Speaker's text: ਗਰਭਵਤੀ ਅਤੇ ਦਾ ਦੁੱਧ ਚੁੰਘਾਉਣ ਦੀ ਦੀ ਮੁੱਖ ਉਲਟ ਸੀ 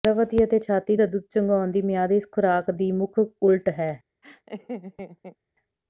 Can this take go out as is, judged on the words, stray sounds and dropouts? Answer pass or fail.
fail